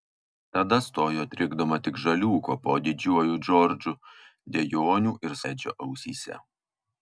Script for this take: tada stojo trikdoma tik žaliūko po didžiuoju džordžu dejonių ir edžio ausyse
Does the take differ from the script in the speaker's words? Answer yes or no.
no